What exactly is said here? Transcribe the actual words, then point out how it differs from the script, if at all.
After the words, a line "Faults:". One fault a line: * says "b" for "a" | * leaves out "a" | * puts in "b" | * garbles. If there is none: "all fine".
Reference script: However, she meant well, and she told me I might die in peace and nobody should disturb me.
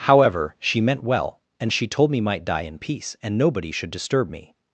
However, she meant well, and she told me might die in peace and nobody should disturb me.
Faults:
* leaves out "I"